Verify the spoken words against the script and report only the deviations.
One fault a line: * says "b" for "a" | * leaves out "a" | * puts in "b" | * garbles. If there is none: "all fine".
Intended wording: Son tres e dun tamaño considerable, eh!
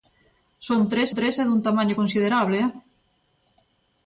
* puts in "tres"